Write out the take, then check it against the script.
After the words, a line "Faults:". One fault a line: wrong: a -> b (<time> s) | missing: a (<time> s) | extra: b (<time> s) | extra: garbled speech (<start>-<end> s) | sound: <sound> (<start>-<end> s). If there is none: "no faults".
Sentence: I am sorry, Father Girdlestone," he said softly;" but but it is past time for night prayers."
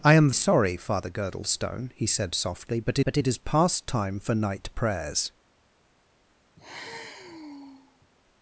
I am sorry, Father Girdlestone," he said softly;" but but it is past time for night prayers."
Faults:
sound: sigh (6.6-8.1 s)